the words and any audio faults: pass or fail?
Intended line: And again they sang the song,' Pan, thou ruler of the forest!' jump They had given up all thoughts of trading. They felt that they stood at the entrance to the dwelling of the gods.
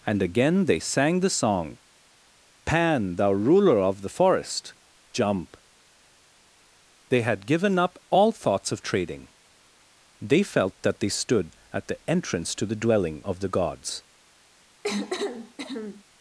fail